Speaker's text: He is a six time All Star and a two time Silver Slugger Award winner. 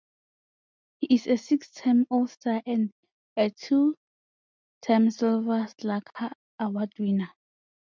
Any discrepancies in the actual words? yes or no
no